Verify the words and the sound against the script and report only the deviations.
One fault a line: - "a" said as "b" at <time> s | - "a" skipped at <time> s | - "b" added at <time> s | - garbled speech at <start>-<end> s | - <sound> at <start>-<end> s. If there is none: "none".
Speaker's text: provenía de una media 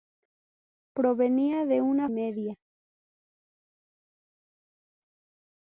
none